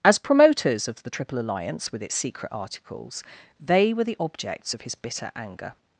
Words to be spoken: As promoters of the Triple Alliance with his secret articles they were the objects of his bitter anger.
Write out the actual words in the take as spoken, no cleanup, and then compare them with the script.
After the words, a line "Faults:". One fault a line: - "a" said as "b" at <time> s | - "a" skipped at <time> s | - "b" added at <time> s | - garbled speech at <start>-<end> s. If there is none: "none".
As promoters of the Triple Alliance with its secret articles they were the objects of his bitter anger.
Faults:
- "his" said as "its" at 2.0 s